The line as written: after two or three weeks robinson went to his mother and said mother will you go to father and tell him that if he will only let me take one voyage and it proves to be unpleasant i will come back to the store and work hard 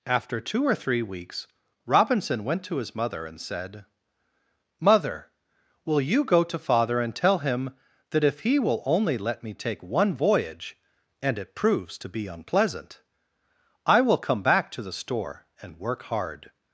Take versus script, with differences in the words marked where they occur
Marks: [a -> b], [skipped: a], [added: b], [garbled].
after two or three weeks robinson went to his mother and said mother will you go to father and tell him that if he will only let me take one voyage and it proves to be unpleasant i will come back to the store and work hard